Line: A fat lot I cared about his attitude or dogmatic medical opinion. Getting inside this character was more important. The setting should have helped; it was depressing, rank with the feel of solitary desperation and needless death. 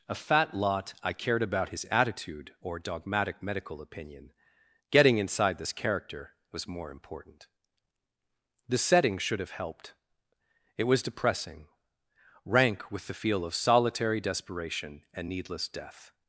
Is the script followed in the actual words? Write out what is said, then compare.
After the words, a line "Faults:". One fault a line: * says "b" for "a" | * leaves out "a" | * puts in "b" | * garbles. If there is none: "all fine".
A fat lot I cared about his attitude or dogmatic medical opinion. Getting inside this character was more important. The setting should have helped; it was depressing, rank with the feel of solitary desperation and needless death.
Faults:
all fine